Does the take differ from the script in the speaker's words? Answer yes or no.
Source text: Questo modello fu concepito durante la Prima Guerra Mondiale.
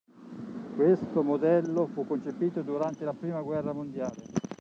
no